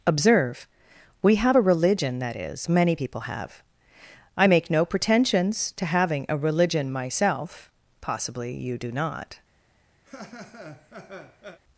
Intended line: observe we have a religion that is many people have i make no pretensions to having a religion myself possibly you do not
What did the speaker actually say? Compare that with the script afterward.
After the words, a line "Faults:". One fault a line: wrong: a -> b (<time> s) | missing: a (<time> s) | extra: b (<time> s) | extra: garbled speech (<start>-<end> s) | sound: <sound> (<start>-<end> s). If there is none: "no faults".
observe we have a religion that is many people have i make no pretensions to having a religion myself possibly you do not
Faults:
sound: laugh (10.0-11.6 s)